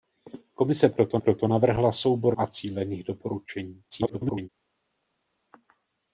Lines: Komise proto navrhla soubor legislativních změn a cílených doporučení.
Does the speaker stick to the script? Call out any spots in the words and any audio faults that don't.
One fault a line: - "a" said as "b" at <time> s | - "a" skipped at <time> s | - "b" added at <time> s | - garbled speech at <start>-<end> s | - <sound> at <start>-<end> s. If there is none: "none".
- "proto" added at 1.2 s
- "legislativních změn" skipped at 2.4 s
- garbled speech at 3.9-4.5 s